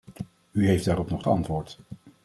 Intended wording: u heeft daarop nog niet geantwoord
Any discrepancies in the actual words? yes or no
yes